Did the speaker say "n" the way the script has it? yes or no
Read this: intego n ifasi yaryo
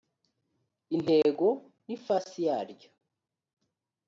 yes